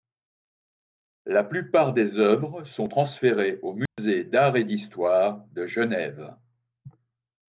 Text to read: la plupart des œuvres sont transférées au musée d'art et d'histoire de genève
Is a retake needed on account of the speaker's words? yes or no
no